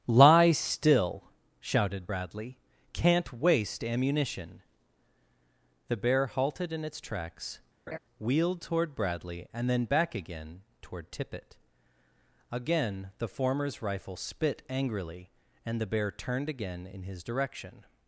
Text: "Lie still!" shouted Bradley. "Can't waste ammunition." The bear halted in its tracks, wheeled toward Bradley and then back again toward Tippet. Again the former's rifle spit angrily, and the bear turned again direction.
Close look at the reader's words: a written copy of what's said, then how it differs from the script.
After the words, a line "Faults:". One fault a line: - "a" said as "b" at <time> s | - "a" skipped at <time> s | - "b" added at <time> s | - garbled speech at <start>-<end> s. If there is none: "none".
"Lie still!" shouted Bradley. "Can't waste ammunition." The bear halted in its tracks, wheeled toward Bradley and then back again toward Tippet. Again the former's rifle spit angrily, and the bear turned again in his direction.
Faults:
- "in his" added at 16.9 s